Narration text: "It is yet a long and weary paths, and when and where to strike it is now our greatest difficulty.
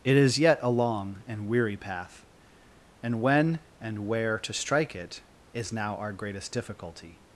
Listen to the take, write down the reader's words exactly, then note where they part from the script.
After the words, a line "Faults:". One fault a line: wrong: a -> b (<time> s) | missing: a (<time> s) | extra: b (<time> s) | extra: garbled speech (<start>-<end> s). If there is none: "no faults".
"It is yet a long and weary path, and when and where to strike it is now our greatest difficulty.
Faults:
wrong: paths -> path (1.8 s)